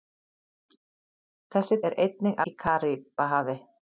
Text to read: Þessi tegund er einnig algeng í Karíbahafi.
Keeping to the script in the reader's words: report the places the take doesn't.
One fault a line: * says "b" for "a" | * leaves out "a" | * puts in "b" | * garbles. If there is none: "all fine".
* leaves out "tegund"
* leaves out "algeng"